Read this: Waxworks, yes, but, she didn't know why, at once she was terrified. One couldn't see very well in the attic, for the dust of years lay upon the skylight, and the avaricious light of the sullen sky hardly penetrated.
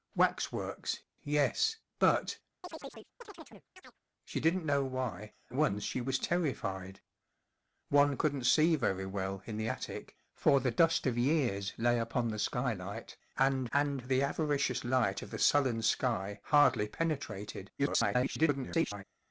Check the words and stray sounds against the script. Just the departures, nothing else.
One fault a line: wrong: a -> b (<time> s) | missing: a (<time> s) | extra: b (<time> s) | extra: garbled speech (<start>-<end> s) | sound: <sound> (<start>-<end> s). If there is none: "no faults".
sound: chirp (2.6-4.0 s)
missing: at (5.3 s)
extra: and (13.7 s)
extra: garbled speech (17.8-19.0 s)